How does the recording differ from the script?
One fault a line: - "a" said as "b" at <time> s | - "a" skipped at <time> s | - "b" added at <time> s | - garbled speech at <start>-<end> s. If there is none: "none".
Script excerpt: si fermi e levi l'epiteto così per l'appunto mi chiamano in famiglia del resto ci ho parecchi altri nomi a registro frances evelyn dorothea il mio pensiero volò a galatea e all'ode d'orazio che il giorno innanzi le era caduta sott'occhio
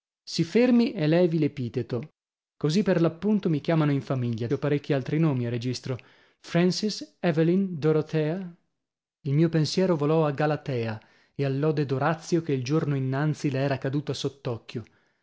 - "del resto ci" skipped at 4.5 s